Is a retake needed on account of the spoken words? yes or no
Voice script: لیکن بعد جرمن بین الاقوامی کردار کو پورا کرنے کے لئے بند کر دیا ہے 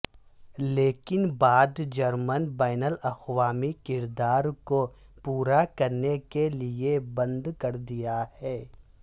no